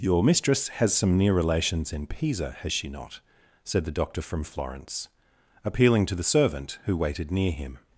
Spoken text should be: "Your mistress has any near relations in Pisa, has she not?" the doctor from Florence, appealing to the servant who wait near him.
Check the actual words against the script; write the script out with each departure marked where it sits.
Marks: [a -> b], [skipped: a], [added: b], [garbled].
"Your mistress has [any -> some] near relations in Pisa, has she not?" [added: said] the doctor from Florence, appealing to the servant who [wait -> waited] near him.